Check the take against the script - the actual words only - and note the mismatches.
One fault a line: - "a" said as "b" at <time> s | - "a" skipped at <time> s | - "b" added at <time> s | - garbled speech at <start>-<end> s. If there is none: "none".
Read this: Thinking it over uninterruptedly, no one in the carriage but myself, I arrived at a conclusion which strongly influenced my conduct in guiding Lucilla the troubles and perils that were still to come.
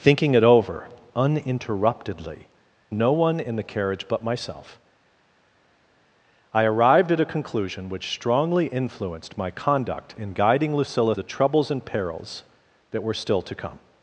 none